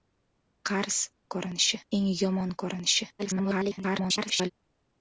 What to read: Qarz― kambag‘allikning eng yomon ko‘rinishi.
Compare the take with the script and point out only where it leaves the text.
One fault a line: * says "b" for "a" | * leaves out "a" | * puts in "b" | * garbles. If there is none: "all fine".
* says "ko‘rinishi" for "kambag‘allikning"
* garbles